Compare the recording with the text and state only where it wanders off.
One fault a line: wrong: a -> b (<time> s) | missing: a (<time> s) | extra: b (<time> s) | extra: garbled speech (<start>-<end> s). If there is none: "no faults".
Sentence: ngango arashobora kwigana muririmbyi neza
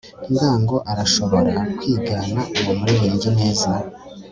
extra: uwo (2.6 s)